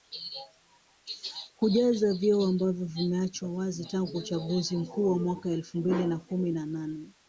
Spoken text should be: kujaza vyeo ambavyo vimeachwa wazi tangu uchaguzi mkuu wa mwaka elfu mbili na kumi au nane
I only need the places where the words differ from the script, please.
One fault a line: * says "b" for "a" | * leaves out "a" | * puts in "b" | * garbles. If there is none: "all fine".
* says "na" for "au"